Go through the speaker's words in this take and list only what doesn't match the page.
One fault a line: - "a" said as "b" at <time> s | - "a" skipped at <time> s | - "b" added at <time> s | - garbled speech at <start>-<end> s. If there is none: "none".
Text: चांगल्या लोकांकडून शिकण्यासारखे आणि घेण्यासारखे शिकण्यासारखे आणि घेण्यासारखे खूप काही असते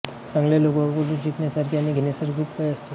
- "शिकण्यासारखे आणि घेण्यासारखे" skipped at 2.3 s